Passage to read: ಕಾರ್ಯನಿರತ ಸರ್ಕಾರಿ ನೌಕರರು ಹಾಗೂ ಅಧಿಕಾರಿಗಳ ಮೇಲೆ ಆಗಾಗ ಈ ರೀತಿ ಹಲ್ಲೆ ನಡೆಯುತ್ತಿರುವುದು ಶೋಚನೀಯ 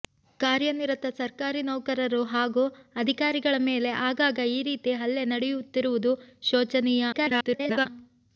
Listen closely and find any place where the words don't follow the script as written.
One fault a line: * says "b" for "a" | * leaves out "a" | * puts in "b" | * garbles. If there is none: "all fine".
* garbles